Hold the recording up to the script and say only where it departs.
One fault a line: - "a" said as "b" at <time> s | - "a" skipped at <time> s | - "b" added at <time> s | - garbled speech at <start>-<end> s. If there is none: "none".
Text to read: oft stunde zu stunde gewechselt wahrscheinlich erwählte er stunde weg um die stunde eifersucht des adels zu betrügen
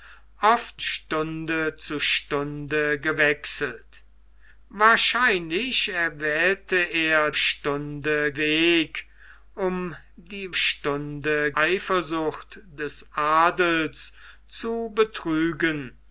none